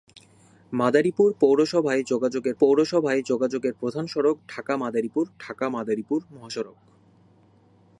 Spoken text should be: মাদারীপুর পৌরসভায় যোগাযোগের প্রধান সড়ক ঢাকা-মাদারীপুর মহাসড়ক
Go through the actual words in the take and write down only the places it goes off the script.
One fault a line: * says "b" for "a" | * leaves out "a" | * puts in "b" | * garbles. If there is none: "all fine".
* puts in "পৌরসভায় যোগাযোগের"
* puts in "ঢাকা-মাদারীপুর"